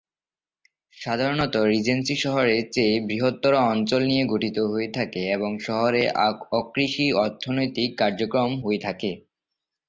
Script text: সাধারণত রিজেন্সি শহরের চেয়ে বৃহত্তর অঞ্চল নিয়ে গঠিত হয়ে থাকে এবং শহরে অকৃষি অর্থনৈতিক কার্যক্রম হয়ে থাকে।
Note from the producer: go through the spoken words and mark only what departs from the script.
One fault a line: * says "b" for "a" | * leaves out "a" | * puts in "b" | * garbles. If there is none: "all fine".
all fine